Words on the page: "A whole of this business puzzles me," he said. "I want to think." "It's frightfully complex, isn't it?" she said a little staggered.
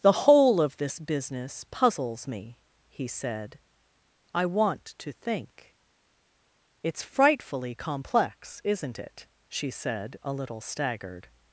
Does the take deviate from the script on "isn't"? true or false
false